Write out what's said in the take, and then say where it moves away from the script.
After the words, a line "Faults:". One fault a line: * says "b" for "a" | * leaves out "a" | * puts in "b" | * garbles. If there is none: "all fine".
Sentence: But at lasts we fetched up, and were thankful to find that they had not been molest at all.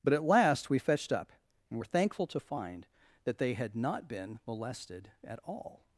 But at last we fetched up, and were thankful to find that they had not been molested at all.
Faults:
* says "last" for "lasts"
* says "molested" for "molest"